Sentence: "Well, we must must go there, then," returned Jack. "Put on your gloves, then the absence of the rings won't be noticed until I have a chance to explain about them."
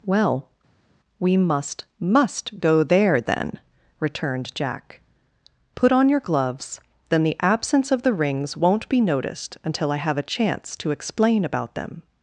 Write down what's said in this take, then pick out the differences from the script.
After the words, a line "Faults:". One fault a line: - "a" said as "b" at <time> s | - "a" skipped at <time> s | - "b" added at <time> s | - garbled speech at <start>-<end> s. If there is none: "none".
"Well, we must must go there, then," returned Jack. "Put on your gloves, then the absence of the rings won't be noticed until I have a chance to explain about them."
Faults:
none